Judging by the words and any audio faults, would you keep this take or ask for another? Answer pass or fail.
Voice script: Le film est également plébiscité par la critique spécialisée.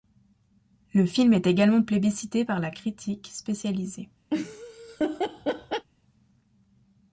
fail